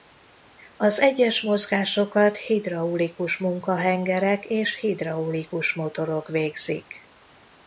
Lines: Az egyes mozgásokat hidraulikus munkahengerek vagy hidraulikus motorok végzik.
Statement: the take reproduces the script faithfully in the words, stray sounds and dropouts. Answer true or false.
false